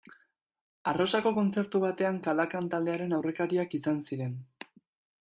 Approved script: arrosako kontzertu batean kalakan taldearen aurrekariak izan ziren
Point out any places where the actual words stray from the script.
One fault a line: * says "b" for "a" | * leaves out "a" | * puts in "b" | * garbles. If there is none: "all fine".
all fine